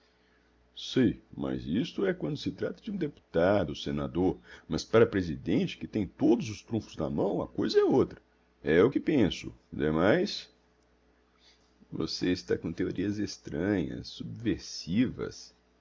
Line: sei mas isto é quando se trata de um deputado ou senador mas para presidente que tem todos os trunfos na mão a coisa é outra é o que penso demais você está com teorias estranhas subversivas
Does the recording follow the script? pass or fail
pass